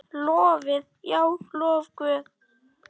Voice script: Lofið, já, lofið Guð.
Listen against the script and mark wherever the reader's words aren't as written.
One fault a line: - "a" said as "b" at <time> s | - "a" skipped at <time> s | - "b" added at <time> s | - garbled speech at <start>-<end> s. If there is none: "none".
none